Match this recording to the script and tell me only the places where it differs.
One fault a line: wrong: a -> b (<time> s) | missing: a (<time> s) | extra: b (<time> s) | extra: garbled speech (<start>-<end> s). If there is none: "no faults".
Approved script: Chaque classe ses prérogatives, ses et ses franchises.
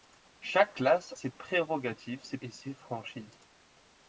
no faults